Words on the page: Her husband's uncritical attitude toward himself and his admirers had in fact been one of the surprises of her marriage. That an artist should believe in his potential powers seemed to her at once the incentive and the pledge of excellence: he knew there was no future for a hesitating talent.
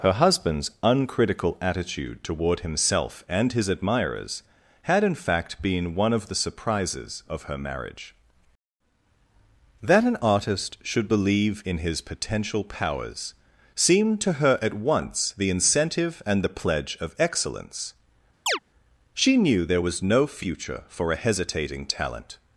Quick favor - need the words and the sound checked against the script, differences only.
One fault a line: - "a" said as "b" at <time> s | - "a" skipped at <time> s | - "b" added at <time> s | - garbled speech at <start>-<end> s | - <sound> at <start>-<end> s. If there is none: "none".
- chirp at 18.5-18.6 s
- "he" said as "she" at 19.1 s